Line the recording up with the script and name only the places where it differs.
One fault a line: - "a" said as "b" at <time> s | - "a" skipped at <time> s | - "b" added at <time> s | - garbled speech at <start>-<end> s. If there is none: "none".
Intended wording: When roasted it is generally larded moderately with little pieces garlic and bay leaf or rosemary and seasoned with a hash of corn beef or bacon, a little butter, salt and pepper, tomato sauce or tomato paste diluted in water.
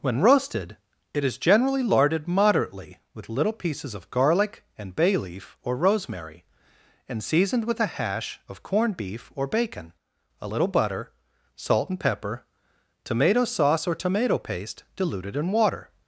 - "of" added at 3.9 s
- "corn" said as "corned" at 8.6 s